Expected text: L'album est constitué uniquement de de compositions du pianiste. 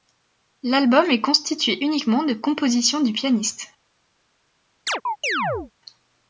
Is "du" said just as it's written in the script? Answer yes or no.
yes